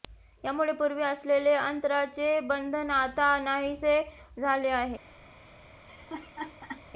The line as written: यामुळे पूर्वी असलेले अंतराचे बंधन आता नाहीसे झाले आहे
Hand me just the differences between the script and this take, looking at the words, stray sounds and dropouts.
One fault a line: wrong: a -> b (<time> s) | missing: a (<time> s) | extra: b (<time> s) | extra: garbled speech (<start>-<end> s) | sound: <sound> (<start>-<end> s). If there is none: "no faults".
sound: laugh (5.9-6.8 s)